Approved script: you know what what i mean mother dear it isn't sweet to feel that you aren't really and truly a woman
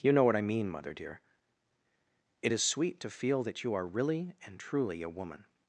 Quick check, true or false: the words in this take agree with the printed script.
false